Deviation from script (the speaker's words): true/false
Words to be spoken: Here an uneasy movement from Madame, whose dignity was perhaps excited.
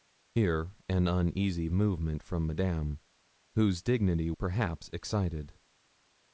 true